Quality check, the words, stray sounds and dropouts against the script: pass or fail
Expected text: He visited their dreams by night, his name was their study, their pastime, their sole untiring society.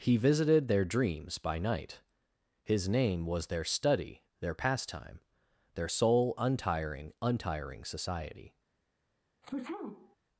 fail